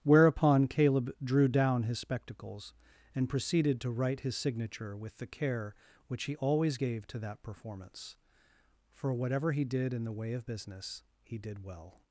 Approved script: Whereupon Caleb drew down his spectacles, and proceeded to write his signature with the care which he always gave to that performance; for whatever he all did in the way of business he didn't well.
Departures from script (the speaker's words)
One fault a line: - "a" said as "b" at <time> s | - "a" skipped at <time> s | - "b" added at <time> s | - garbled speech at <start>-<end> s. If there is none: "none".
- "all" skipped at 9.6 s
- "didn't" said as "did" at 11.4 s